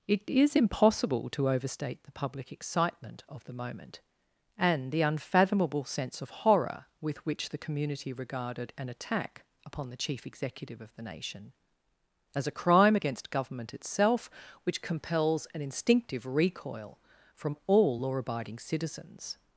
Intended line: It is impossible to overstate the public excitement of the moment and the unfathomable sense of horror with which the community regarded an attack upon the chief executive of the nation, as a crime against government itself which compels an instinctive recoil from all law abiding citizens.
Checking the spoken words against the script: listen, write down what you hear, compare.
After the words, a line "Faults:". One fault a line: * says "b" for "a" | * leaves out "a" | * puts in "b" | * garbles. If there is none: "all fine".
It is impossible to overstate the public excitement of the moment and the unfathomable sense of horror with which the community regarded an attack upon the chief executive of the nation, as a crime against government itself which compels an instinctive recoil from all law abiding citizens.
Faults:
all fine